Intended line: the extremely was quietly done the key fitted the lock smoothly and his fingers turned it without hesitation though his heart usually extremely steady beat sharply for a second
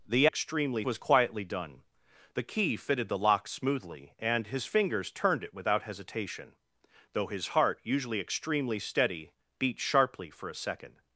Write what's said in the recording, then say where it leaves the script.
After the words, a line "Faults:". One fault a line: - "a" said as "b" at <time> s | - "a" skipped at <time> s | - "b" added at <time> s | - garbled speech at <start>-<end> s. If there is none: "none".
the extremely was quietly done the key fitted the lock smoothly and his fingers turned it without hesitation though his heart usually extremely steady beat sharply for a second
Faults:
none